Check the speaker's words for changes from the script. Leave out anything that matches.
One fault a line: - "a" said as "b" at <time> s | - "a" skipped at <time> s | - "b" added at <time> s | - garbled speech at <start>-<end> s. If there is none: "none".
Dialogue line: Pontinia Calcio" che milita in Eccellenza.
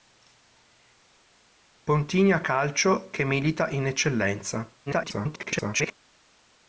- garbled speech at 4.9-5.9 s